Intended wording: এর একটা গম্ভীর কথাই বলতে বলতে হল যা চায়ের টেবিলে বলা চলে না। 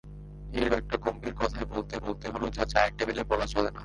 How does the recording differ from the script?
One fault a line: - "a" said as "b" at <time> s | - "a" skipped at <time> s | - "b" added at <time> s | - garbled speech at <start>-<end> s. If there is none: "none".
none